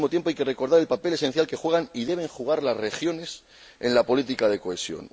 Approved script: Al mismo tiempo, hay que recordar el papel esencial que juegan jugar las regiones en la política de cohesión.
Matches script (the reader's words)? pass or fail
fail